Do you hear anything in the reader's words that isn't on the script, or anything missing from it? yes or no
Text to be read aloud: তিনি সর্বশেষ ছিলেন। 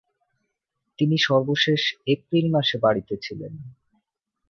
yes